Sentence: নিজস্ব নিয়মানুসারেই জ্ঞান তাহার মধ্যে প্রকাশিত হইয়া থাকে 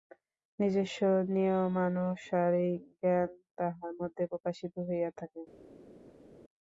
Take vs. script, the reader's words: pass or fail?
pass